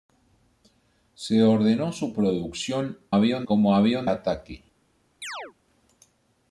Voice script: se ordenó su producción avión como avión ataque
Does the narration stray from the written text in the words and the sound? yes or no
yes